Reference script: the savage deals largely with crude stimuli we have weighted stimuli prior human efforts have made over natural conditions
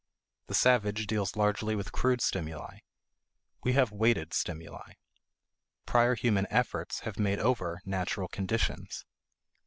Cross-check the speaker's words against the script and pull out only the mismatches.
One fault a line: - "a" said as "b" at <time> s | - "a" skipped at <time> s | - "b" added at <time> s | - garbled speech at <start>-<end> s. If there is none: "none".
none